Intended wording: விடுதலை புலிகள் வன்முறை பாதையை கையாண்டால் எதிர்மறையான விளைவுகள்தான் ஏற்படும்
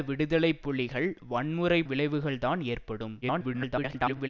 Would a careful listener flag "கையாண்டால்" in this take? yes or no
yes